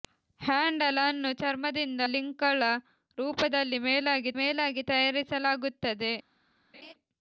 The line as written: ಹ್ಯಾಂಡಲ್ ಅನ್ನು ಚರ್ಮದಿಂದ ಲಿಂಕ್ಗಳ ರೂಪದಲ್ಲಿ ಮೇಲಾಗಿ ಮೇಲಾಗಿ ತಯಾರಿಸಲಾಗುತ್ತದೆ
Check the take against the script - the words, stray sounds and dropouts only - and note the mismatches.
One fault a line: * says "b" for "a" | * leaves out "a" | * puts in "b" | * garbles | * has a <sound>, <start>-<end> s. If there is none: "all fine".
* has a laugh, 6.7-6.9 s